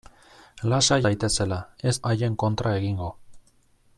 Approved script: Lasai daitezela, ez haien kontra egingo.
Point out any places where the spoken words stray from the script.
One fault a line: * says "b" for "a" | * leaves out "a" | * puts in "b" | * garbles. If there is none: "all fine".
all fine